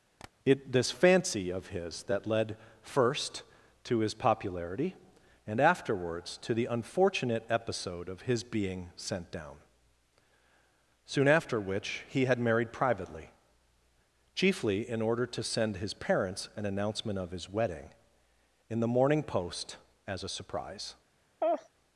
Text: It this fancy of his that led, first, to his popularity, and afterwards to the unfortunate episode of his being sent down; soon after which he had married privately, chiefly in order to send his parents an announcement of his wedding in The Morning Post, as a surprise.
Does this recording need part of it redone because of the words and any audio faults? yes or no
yes